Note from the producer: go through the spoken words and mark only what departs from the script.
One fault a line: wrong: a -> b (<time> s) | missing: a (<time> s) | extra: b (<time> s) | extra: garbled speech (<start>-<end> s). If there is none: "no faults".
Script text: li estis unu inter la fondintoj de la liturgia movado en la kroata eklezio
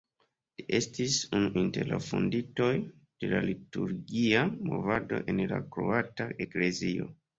no faults